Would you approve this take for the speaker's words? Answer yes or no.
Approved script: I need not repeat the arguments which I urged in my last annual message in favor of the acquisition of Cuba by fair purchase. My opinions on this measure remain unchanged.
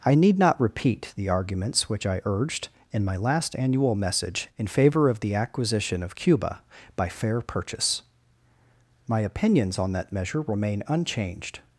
no